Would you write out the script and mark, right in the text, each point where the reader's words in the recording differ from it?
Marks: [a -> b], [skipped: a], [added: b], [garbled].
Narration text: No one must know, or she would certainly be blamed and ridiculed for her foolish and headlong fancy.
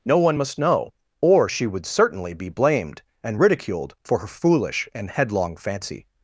No one must know, or she would certainly be blamed and ridiculed for her foolish and headlong fancy.